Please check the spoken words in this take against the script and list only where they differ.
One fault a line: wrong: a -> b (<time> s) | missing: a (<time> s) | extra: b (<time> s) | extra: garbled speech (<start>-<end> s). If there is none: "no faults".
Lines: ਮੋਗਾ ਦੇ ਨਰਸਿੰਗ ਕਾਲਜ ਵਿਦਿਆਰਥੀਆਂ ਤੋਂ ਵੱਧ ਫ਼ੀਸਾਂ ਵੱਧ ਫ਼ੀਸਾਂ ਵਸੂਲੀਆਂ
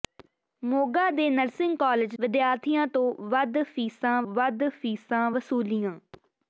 no faults